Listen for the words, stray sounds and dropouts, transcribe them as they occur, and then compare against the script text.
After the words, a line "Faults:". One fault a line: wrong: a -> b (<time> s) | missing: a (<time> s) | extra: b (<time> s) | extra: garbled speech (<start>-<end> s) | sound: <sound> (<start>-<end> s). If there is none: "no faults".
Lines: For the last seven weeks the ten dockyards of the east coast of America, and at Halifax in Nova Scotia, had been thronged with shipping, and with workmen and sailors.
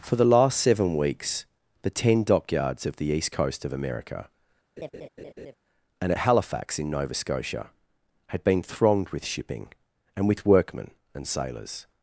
For the last seven weeks the ten dockyards of the east coast of America, and at Halifax in Nova Scotia, had been thronged with shipping, and with workmen and sailors.
Faults:
sound: laugh (4.8-5.6 s)